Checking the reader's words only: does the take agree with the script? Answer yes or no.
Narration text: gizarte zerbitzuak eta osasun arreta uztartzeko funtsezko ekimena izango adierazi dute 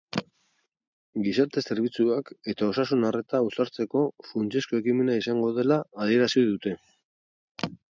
no